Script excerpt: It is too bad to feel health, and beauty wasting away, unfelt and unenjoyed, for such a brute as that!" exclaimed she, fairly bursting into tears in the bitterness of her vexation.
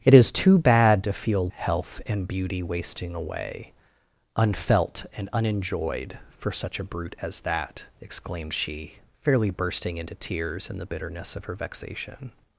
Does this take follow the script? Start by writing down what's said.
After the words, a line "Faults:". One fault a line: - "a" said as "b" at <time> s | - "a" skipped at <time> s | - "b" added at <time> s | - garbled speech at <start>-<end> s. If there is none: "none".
It is too bad to feel health, and beauty wasting away, unfelt and unenjoyed, for such a brute as that!" exclaimed she, fairly bursting into tears in the bitterness of her vexation.
Faults:
none